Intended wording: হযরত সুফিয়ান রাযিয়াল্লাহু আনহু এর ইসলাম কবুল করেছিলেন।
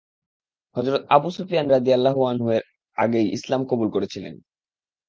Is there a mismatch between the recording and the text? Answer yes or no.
yes